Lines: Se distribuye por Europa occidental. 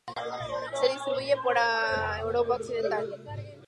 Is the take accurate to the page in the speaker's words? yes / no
yes